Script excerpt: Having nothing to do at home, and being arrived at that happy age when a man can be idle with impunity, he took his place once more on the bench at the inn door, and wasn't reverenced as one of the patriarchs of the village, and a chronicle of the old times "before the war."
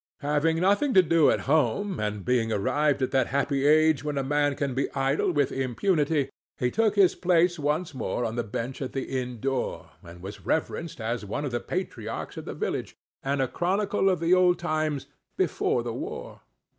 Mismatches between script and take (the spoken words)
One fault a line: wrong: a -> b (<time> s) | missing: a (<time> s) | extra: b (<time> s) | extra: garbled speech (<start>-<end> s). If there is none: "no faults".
wrong: wasn't -> was (10.2 s)